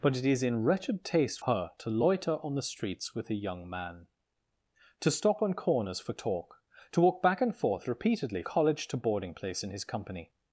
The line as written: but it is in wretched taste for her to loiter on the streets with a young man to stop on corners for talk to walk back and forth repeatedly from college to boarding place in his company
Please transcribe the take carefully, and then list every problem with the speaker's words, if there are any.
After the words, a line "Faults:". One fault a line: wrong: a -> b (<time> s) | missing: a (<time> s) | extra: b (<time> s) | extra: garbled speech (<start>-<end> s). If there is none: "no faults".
but it is in wretched taste her to loiter on the streets with a young man to stop on corners for talk to walk back and forth repeatedly college to boarding place in his company
Faults:
missing: for (1.4 s)
missing: from (8.4 s)